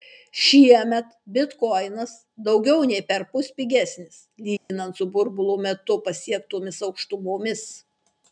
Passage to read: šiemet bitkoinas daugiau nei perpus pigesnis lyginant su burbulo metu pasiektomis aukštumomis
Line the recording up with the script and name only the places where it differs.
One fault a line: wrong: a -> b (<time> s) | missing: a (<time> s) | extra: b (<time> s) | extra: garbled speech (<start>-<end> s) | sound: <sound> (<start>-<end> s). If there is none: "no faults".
sound: dropout (4.6-4.7 s)